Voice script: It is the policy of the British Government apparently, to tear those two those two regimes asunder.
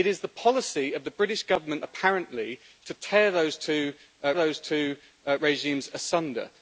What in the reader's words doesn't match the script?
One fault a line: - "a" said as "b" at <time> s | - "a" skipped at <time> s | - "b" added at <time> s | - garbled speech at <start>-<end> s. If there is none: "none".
none